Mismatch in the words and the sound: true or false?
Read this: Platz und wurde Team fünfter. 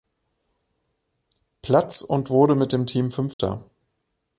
true